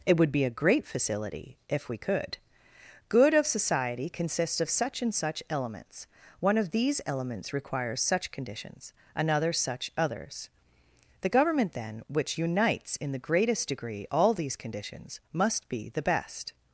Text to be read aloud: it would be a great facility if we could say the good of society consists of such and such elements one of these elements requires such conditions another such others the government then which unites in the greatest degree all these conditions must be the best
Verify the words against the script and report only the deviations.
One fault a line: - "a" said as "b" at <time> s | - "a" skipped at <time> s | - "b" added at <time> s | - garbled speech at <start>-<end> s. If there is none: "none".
- "say the" skipped at 2.4 s